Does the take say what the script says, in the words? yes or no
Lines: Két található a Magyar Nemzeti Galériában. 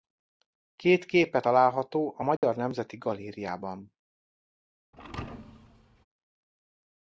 no